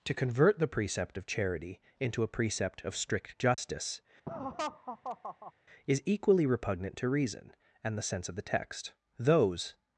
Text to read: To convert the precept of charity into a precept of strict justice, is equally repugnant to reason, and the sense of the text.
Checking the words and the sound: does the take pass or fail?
fail